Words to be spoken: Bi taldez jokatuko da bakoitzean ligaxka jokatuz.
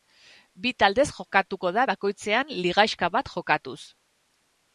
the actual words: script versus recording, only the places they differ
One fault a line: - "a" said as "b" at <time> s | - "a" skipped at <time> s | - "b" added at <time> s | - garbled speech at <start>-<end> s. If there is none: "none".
- "bat" added at 3.2 s